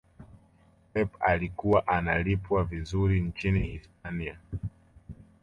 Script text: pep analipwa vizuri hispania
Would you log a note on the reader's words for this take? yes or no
yes